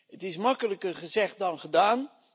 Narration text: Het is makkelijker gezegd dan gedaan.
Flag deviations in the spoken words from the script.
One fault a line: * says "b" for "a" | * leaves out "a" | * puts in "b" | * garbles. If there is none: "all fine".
all fine